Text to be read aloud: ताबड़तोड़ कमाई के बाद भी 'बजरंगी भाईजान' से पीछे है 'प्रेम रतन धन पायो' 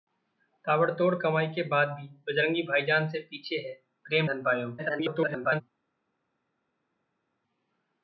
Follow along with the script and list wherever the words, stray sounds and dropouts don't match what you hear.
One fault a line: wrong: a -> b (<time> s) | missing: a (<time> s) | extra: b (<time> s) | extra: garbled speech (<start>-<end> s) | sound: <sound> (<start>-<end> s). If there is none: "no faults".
missing: रतन (4.3 s)
extra: garbled speech (4.8-5.6 s)